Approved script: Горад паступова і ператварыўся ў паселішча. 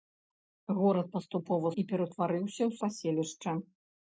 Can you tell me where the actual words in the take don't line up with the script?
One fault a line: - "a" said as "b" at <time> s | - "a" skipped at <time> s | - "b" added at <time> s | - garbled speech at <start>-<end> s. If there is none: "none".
none